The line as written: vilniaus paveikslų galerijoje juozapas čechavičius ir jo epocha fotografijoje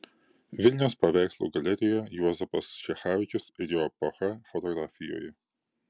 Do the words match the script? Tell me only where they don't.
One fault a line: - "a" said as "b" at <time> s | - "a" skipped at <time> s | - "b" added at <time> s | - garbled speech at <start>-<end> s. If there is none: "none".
none